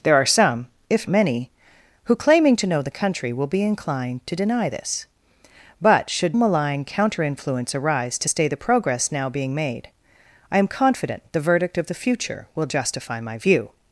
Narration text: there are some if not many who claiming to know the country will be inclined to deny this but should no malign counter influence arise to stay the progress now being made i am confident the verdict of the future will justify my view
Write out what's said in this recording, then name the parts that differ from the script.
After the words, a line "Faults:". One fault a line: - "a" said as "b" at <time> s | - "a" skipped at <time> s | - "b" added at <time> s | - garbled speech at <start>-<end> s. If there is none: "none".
there are some if many who claiming to know the country will be inclined to deny this but should malign counter influence arise to stay the progress now being made i am confident the verdict of the future will justify my view
Faults:
- "not" skipped at 1.1 s
- "no" skipped at 6.4 s